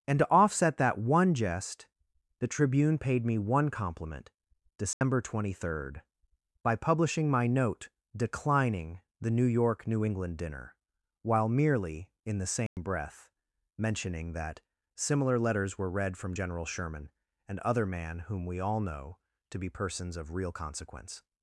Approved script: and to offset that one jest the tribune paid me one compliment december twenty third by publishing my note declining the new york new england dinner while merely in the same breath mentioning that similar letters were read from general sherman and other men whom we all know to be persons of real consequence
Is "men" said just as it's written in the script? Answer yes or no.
no